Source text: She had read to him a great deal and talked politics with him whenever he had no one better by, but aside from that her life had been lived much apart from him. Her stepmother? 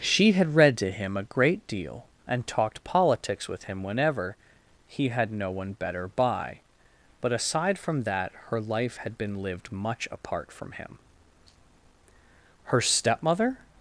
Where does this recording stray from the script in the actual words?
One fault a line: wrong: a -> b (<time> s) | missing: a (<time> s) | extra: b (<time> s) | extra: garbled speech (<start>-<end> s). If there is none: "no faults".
no faults